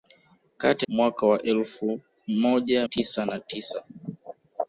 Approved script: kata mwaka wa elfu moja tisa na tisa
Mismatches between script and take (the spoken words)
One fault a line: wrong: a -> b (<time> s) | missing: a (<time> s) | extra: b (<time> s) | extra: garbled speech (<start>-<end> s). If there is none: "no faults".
no faults